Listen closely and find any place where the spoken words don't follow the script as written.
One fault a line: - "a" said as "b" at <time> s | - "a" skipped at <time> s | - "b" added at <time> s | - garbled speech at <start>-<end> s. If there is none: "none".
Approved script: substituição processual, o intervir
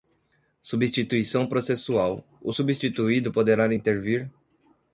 - "substituído poderá" added at 2.5 s